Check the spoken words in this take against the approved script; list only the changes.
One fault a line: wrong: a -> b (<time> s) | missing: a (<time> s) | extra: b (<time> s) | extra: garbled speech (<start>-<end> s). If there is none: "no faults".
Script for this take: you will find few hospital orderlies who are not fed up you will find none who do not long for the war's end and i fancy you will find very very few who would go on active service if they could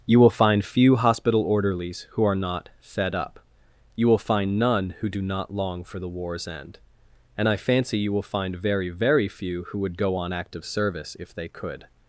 no faults